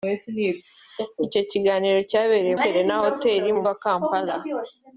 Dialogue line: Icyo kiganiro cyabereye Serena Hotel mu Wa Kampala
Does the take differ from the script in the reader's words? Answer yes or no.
no